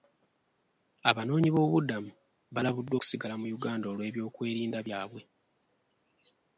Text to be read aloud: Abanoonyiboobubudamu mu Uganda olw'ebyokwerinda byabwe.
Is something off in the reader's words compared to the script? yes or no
yes